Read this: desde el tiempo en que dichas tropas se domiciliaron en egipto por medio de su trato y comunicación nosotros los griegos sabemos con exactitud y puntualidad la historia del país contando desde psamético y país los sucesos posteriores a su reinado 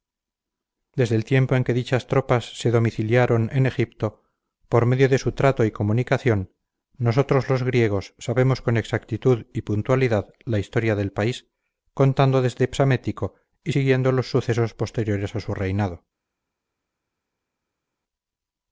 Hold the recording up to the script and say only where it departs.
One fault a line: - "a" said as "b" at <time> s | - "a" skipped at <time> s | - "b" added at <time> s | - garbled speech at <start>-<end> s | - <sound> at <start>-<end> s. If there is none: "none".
- "país" said as "siguiendo" at 13.7 s